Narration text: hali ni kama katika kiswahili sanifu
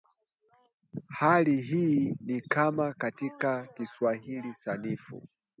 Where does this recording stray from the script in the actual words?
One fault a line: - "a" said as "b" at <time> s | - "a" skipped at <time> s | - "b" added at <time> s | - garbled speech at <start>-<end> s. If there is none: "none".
- "hii" added at 1.6 s